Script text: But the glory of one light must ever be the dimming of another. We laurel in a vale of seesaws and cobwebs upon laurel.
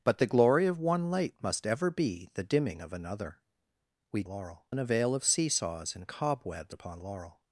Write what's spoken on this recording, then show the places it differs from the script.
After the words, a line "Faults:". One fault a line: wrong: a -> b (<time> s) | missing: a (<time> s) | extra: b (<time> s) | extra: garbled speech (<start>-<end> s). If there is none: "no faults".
But the glory of one light must ever be the dimming of another. We laurel in a vale of seesaws and cobwebs upon laurel.
Faults:
no faults